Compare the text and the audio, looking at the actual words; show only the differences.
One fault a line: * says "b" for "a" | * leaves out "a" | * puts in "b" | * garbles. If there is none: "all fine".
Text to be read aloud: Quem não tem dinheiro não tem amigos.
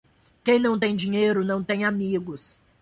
all fine